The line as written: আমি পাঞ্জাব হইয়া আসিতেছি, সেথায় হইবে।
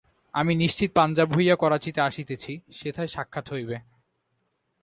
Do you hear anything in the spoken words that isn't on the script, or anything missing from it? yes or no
yes